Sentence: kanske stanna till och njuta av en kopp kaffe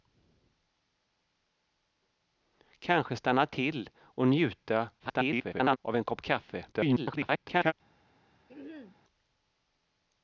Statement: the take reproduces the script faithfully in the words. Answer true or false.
false